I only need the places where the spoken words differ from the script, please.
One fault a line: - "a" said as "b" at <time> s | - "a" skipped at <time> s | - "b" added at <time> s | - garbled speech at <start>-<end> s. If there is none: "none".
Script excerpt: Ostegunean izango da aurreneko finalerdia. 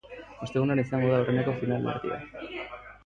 none